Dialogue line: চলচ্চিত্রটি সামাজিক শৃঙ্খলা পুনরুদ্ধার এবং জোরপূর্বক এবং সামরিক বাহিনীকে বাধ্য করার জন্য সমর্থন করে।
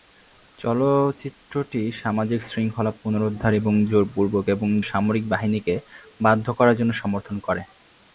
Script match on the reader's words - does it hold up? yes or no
yes